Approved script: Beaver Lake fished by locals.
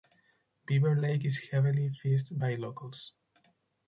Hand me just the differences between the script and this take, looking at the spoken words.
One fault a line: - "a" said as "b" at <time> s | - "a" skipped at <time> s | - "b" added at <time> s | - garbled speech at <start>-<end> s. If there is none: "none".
- "is heavily" added at 1.2 s